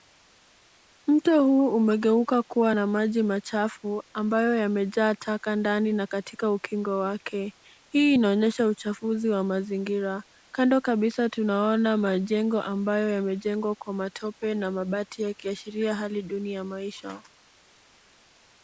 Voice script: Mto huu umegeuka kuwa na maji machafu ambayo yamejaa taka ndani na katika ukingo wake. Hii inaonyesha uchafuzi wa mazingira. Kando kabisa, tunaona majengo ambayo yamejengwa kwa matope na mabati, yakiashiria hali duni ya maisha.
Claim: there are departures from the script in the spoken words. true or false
false